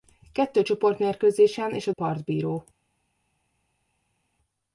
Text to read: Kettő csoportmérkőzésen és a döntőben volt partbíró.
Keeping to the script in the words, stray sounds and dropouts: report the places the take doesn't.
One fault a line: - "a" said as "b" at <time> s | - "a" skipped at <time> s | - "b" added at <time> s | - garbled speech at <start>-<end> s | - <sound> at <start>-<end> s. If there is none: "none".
- "döntőben volt" skipped at 1.9 s